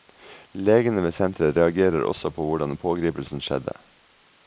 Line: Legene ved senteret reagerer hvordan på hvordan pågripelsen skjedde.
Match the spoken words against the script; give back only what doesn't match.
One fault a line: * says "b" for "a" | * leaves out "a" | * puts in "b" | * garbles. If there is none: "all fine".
* says "også" for "hvordan"